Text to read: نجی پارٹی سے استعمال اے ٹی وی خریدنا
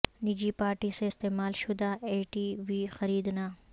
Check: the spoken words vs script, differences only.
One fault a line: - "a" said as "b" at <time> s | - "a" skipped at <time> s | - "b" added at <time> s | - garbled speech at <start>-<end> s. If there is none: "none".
- "شدہ" added at 1.6 s